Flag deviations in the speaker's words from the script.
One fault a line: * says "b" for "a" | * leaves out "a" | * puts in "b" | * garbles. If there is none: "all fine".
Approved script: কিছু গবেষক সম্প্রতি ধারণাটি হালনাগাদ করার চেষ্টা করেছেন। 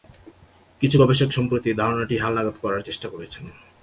all fine